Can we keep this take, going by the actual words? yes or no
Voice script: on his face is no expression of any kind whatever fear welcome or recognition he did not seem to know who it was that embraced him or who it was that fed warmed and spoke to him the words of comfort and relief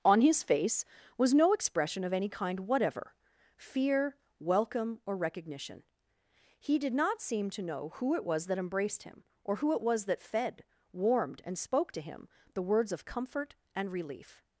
no